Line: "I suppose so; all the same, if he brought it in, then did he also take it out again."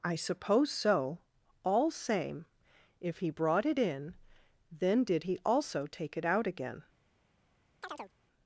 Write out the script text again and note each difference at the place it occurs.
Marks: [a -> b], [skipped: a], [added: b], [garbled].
"I suppose so; all [skipped: the] same, if he brought it in, then did he also take it out again."